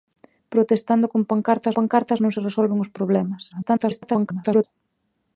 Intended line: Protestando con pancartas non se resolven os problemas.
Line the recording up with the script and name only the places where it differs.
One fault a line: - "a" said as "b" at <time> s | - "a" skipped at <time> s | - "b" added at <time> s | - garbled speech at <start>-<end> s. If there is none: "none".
- "pancartas" added at 1.8 s
- garbled speech at 3.5-4.6 s